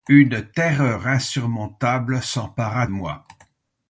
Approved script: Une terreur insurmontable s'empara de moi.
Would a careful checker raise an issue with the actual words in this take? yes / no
yes